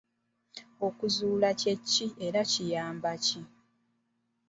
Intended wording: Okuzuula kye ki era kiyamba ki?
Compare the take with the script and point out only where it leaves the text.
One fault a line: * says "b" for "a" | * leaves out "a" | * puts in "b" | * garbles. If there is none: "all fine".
all fine